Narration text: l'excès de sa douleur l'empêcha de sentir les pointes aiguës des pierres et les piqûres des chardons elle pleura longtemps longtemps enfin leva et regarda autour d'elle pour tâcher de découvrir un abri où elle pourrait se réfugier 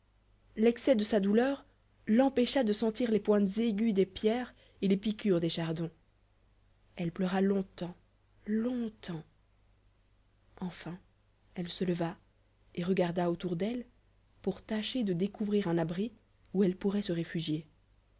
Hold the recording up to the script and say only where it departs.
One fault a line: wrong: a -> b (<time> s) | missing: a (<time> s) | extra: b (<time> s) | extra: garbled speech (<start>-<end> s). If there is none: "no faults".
extra: elle se (11.6 s)